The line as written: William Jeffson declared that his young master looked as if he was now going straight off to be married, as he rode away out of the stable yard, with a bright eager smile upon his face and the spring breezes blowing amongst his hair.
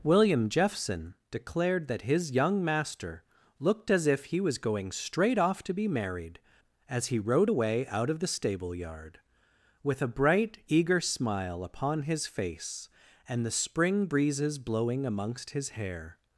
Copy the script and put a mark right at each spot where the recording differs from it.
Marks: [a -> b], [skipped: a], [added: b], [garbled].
William Jeffson declared that his young master looked as if he was [skipped: now] going straight off to be married, as he rode away out of the stable yard, with a bright eager smile upon his face and the spring breezes blowing amongst his hair.